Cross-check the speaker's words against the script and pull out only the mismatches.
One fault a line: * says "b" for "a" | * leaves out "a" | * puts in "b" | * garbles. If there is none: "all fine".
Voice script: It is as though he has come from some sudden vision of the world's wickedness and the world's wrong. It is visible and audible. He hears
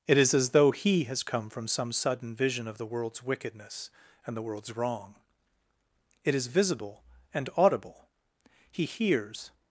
all fine